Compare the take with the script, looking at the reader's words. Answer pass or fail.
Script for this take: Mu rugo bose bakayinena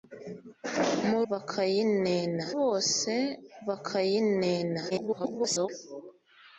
fail